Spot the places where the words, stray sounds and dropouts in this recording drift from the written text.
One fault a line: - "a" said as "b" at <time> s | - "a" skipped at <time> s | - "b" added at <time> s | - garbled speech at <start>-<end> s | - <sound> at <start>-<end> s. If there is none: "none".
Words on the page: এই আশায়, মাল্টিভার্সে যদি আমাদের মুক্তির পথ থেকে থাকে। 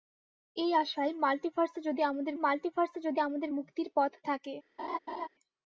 - "মাল্টিভার্সে যদি আমাদের" added at 2.4 s
- "থেকে" skipped at 4.1 s
- laugh at 4.8-5.3 s